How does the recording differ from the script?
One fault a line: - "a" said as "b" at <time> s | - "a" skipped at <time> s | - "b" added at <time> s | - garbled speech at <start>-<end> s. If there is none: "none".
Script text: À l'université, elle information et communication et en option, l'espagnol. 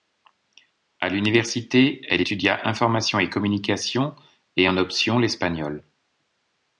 - "étudia" added at 2.2 s